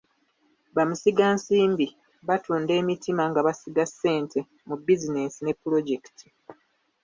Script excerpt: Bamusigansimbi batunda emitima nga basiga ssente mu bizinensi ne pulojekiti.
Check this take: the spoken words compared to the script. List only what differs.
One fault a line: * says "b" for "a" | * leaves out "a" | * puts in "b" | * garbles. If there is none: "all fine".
all fine